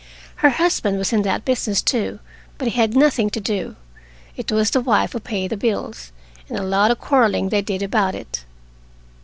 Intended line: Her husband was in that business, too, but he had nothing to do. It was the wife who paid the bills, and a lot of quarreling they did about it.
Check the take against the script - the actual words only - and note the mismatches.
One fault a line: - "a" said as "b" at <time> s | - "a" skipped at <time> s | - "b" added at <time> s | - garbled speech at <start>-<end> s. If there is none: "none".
none